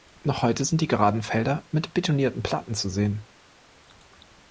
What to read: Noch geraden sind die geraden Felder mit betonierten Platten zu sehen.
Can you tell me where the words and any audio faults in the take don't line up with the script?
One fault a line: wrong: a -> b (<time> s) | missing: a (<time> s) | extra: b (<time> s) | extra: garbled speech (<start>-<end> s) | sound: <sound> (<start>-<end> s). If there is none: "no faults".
wrong: geraden -> heute (0.4 s)